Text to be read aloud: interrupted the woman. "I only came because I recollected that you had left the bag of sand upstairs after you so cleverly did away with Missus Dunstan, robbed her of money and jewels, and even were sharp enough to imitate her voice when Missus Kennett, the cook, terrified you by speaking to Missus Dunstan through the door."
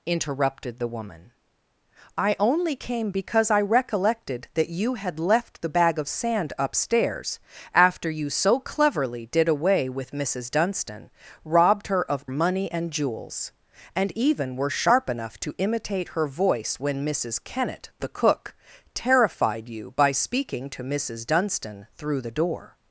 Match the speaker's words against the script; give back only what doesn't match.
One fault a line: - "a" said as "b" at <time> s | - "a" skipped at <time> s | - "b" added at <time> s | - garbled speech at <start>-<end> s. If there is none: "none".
none